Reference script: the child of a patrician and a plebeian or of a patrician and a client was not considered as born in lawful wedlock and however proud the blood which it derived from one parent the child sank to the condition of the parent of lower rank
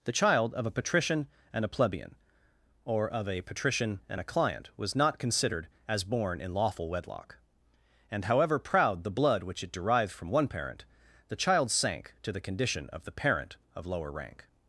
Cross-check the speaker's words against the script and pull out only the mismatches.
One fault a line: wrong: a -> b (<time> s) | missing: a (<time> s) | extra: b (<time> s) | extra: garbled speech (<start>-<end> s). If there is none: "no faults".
no faults